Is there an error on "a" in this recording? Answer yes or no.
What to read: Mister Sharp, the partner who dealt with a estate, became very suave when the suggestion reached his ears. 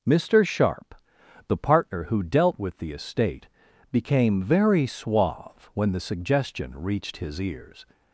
yes